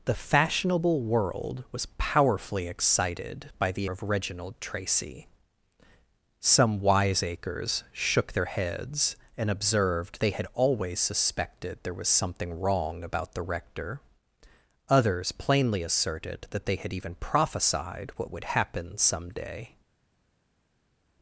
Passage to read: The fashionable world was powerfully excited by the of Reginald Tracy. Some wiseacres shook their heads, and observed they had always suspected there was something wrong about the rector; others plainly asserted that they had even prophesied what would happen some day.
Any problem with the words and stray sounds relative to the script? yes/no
no